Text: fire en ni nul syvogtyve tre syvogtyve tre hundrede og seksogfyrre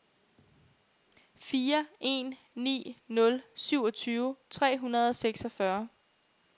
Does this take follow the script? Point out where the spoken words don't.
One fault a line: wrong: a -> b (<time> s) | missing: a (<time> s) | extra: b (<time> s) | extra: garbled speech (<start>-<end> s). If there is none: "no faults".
missing: syvogtyve tre (4.8 s)